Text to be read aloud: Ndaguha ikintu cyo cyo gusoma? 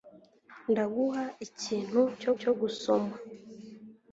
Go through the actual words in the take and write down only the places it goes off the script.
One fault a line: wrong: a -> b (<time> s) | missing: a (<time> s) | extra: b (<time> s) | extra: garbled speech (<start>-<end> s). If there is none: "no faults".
no faults